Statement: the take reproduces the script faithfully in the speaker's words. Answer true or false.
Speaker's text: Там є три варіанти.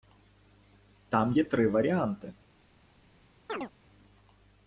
true